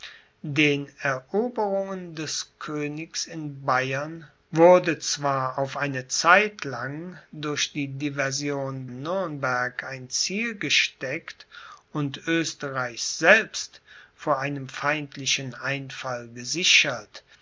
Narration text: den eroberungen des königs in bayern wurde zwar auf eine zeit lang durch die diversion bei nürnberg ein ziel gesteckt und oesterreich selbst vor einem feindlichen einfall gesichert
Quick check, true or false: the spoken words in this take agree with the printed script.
false